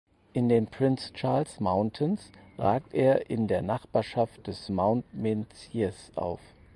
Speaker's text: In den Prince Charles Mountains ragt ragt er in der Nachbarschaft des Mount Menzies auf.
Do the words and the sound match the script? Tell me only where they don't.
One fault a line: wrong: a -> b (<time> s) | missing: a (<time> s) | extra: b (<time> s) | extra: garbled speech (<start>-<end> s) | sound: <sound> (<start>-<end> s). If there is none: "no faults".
missing: ragt (2.9 s)